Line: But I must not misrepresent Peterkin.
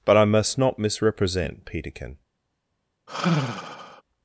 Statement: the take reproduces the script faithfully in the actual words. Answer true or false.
true